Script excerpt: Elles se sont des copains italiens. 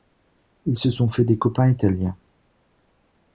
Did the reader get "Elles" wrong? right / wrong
wrong